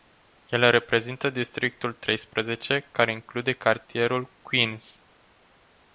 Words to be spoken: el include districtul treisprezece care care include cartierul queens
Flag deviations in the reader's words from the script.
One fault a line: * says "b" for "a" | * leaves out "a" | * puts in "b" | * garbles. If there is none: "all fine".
* says "reprezintă" for "include"
* leaves out "care"